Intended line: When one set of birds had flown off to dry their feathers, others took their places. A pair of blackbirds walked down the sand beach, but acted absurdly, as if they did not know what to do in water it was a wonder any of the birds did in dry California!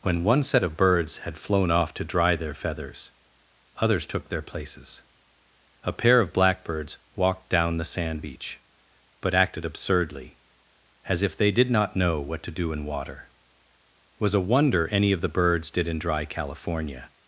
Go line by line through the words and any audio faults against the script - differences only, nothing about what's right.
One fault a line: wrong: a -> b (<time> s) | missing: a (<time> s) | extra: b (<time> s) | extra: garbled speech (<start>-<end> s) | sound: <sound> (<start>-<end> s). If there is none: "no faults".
no faults